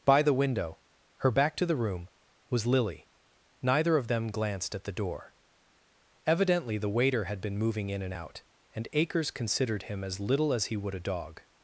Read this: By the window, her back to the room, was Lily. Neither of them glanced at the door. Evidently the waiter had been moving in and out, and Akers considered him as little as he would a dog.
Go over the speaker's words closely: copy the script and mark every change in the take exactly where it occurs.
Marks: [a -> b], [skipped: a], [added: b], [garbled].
By the window, her back to the room, was Lily. Neither of them glanced at the door. Evidently the waiter had been moving in and out, and Akers considered him as little as he would a dog.